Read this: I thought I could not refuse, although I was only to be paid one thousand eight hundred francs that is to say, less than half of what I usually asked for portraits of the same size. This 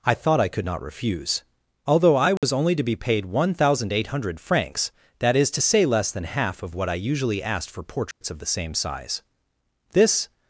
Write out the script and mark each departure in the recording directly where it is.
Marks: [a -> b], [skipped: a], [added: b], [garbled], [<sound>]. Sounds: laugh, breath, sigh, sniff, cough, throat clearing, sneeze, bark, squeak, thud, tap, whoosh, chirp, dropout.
I thought I could not refuse, although I was [dropout] only to be paid one thousand eight hundred francs that is to say, less than half of what I usually asked for portraits [dropout] of the same size. This